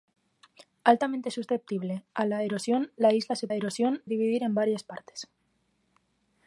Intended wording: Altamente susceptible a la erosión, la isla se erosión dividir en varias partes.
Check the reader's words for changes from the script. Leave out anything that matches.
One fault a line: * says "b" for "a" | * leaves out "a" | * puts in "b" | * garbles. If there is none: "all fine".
all fine